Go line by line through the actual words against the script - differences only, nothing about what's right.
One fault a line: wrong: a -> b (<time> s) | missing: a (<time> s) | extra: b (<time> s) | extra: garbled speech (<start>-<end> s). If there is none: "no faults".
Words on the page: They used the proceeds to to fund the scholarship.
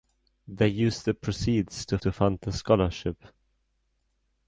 no faults